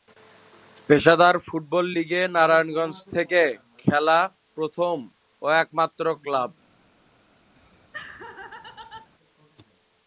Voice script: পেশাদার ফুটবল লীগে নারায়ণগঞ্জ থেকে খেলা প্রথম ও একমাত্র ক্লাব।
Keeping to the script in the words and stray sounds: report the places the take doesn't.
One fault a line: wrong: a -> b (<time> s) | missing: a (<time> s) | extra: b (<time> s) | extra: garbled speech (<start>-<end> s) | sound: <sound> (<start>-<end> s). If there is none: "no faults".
sound: laugh (7.5-9.1 s)